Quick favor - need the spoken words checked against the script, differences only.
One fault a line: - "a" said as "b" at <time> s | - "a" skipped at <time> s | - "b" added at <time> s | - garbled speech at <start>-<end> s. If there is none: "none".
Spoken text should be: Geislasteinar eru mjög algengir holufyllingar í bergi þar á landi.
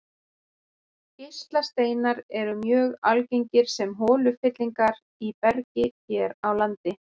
- "sem" added at 3.8 s
- "þar" said as "hér" at 5.9 s